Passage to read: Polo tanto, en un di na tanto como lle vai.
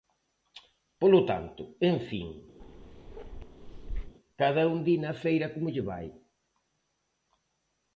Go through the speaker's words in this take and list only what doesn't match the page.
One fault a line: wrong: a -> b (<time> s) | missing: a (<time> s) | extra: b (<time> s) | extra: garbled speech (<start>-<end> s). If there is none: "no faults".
extra: fin cada (2.1 s)
wrong: tanto -> feira (5.2 s)